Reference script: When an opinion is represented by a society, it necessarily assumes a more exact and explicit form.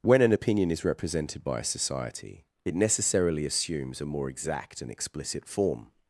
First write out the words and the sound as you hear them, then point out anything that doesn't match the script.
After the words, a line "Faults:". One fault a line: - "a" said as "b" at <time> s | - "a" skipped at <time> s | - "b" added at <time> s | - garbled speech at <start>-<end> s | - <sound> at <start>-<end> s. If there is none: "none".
When an opinion is represented by a society, it necessarily assumes a more exact and explicit form.
Faults:
none